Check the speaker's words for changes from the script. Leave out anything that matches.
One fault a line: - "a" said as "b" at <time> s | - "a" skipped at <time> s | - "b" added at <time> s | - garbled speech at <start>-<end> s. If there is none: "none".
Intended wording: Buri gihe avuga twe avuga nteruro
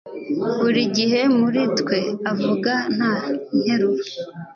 - "avuga" said as "muri" at 1.4 s
- "nta" added at 2.9 s